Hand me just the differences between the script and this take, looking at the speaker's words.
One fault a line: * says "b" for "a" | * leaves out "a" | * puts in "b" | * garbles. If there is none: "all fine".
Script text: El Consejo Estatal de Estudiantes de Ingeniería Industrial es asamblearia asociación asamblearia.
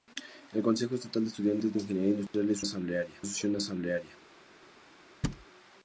all fine